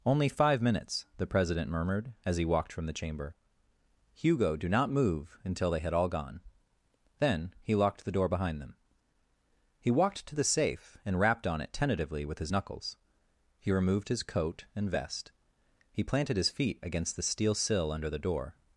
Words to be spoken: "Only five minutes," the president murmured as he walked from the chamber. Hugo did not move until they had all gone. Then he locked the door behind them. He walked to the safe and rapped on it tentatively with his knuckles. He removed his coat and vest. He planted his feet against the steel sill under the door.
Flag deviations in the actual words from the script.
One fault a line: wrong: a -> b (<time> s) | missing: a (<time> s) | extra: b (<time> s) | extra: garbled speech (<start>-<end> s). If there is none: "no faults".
wrong: did -> do (4.5 s)